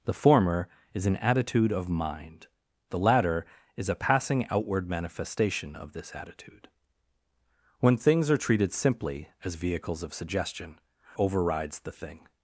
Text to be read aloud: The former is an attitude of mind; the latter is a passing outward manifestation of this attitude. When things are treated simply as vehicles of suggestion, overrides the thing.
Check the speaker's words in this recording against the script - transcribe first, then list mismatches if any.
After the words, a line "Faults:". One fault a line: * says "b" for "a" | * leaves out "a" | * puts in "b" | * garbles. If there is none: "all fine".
The former is an attitude of mind; the latter is a passing outward manifestation of this attitude. When things are treated simply as vehicles of suggestion, overrides the thing.
Faults:
all fine